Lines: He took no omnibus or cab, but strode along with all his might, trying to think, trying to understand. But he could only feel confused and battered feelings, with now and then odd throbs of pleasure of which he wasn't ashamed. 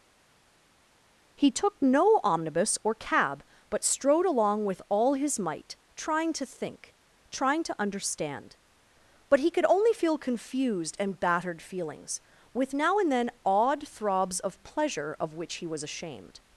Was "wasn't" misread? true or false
true